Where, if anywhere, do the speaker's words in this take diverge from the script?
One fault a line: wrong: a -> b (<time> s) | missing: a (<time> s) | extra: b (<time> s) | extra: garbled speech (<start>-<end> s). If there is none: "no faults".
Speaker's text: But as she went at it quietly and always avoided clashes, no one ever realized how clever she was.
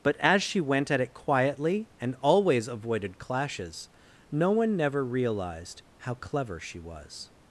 wrong: ever -> never (4.8 s)